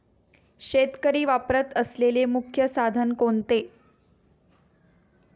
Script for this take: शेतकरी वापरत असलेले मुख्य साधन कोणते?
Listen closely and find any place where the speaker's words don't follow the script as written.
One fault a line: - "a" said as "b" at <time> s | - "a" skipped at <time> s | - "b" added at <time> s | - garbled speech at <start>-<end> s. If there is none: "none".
none